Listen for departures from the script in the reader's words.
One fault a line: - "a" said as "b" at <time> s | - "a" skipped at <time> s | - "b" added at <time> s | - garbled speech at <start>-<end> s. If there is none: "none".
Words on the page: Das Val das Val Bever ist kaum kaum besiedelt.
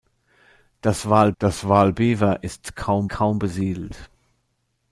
none